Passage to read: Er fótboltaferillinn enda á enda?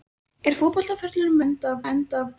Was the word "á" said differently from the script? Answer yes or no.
no